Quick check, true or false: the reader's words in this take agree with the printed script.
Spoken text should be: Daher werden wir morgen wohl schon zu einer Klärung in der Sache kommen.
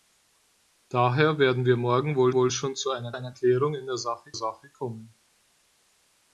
false